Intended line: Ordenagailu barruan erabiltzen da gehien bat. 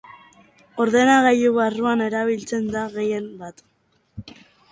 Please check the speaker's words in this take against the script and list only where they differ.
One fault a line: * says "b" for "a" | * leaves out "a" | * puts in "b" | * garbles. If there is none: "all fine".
all fine